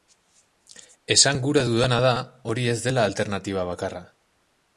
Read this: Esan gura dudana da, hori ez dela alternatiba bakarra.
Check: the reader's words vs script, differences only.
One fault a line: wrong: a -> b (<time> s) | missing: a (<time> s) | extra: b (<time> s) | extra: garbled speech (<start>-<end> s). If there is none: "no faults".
no faults